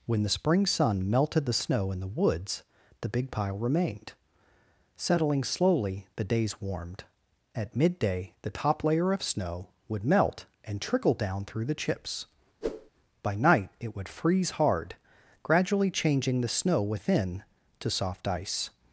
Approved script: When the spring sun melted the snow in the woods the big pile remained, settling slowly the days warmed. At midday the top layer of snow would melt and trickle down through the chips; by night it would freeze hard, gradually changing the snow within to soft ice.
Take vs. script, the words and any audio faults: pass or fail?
fail